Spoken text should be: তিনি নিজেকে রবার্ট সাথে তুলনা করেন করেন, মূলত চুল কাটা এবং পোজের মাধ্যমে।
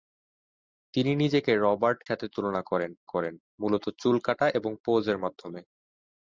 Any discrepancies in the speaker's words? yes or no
no